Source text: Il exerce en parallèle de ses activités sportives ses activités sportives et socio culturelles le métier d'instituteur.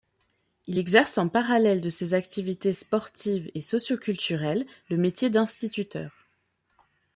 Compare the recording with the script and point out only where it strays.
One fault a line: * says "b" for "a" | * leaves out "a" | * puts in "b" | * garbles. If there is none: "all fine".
* leaves out "ses activités sportives"